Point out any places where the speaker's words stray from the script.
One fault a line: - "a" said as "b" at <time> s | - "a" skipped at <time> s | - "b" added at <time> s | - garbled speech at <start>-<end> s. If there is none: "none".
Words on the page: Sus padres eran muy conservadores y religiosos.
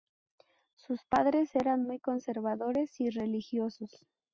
none